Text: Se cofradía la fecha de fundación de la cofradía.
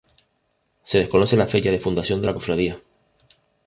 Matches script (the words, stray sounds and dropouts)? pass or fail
fail